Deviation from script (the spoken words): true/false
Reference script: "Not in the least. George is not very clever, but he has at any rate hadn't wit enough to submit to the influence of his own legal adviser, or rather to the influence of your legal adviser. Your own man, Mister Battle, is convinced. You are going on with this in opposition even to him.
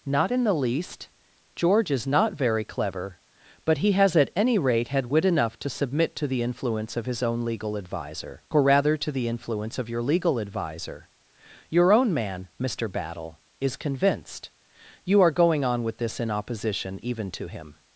true